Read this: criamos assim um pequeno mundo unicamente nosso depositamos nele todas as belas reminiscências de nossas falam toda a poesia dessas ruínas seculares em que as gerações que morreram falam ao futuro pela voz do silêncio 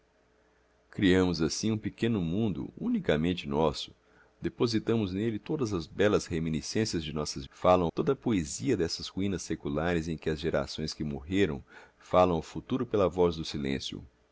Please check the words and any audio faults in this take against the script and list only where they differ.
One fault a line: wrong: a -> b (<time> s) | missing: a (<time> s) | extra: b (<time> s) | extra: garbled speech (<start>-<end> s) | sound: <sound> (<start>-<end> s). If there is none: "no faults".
no faults